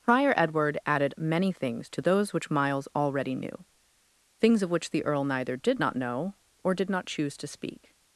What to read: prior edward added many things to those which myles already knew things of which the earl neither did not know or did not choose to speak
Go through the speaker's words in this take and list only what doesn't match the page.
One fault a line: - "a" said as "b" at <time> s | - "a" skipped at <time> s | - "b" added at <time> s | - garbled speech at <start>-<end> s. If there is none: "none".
none